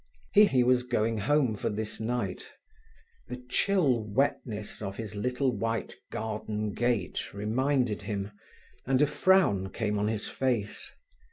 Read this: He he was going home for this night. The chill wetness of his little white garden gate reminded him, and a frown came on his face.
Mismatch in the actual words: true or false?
false